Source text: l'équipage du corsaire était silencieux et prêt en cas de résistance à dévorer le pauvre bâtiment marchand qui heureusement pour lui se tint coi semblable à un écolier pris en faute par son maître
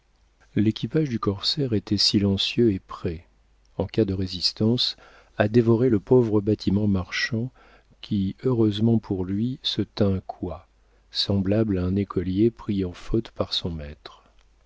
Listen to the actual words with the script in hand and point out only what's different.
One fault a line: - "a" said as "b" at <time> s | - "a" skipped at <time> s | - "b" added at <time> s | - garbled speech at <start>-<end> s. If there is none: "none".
none